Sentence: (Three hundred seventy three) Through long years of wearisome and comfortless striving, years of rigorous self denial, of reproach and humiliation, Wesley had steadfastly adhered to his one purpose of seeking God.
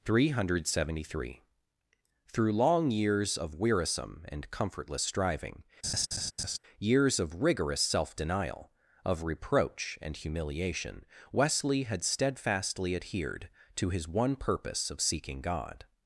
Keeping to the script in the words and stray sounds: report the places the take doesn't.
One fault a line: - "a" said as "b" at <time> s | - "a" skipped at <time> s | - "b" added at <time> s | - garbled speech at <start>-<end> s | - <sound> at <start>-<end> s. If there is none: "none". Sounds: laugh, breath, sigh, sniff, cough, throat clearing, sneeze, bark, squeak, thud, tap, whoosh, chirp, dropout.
- laugh at 5.8-6.6 s